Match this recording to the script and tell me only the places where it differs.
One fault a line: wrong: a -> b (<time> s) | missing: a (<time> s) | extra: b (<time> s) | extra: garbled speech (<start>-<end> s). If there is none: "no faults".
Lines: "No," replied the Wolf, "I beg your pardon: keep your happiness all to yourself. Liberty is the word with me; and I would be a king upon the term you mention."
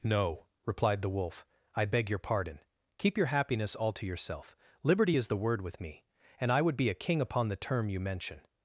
no faults